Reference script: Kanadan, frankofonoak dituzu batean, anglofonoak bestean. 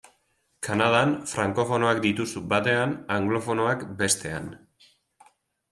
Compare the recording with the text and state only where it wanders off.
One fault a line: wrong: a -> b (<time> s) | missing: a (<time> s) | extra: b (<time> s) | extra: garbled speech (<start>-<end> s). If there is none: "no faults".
no faults